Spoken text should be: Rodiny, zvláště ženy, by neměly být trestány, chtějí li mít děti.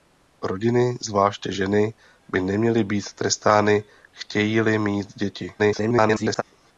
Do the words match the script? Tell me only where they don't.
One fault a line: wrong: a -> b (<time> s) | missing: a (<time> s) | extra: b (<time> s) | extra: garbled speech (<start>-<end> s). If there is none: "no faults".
extra: garbled speech (5.6-6.4 s)